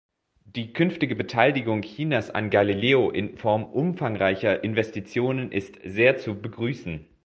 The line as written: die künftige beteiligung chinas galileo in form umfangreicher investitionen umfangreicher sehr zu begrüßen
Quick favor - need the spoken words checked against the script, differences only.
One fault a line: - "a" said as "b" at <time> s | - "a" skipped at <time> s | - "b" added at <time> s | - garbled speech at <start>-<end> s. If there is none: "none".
- "an" added at 2.3 s
- "umfangreicher" said as "ist" at 5.5 s